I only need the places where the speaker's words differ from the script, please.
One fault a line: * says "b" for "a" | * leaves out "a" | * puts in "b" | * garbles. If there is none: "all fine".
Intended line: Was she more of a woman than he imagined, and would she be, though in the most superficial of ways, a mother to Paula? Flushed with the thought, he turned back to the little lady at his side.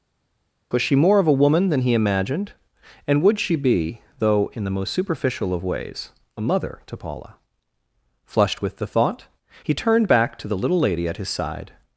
all fine